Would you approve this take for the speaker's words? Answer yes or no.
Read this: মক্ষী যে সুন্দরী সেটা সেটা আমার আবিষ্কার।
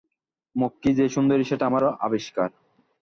no